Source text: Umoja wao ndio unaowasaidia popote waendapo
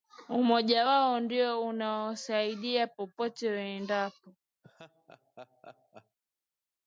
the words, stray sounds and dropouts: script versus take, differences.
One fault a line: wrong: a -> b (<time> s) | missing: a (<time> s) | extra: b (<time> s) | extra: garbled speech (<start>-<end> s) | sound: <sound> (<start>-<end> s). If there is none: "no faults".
sound: laugh (4.6-6.2 s)